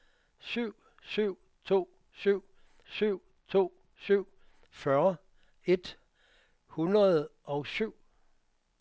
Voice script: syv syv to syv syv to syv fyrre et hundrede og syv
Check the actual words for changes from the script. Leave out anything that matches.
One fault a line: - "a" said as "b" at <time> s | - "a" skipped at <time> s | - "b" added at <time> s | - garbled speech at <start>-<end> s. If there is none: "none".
none